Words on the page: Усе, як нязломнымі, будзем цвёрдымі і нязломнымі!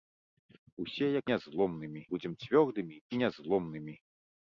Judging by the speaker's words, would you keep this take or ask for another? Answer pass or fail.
pass